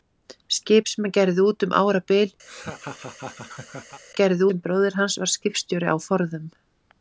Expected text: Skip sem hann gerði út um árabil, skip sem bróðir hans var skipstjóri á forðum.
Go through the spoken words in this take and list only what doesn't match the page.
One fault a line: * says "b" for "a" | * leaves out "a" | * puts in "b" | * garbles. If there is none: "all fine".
* says "gerði" for "skip"